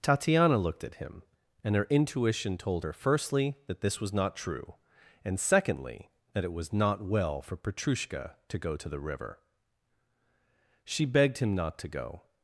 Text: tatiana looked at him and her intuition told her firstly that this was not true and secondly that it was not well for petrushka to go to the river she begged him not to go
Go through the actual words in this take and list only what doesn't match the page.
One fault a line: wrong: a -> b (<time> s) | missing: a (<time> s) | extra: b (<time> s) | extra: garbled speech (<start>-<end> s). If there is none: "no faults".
no faults